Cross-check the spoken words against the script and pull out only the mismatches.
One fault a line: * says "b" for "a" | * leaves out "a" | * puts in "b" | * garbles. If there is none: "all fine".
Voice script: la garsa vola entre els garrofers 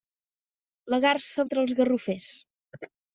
* leaves out "vola"